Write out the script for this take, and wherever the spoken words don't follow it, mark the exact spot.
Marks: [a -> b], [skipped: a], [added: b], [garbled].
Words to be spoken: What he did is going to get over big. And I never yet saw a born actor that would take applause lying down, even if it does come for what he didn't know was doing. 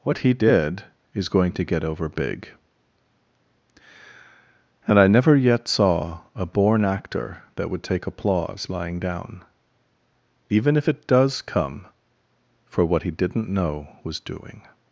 What he did is going to get over big. And I never yet saw a born actor that would take applause lying down, even if it does come for what he didn't know was doing.